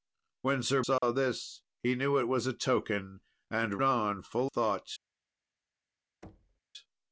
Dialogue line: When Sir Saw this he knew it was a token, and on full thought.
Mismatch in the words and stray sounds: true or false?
true